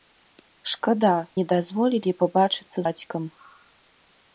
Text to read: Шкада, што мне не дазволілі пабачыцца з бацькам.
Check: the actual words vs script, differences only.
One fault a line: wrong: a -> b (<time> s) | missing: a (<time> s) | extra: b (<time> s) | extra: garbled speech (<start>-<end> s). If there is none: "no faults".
missing: што мне (1.1 s)
missing: з (2.8 s)